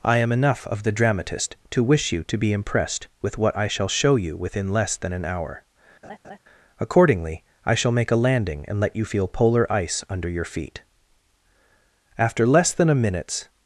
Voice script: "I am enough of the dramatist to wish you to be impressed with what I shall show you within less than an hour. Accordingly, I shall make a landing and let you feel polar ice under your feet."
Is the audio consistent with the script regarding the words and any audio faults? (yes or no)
no